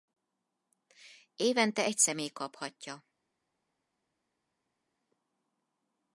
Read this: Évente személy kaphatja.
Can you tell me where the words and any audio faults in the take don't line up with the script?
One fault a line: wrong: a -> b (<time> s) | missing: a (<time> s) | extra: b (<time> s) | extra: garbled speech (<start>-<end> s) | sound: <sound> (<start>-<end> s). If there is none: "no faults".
extra: egy (1.8 s)